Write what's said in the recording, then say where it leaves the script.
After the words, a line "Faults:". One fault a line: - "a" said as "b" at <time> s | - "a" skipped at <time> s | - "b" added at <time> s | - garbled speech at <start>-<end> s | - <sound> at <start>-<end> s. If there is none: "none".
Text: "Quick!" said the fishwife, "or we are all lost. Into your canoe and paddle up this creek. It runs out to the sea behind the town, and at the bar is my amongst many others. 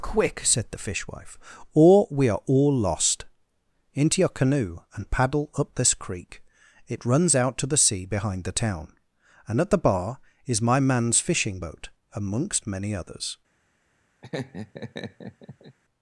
"Quick!" said the fishwife, "or we are all lost. Into your canoe and paddle up this creek. It runs out to the sea behind the town, and at the bar is my man's fishing boat amongst many others.
Faults:
- "man's fishing boat" added at 10.8 s
- laugh at 14.2-15.8 s